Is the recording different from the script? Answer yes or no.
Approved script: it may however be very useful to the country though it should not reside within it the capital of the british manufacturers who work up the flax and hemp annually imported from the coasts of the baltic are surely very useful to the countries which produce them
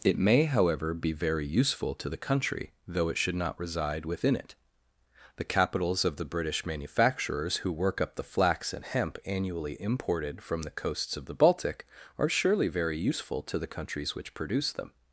yes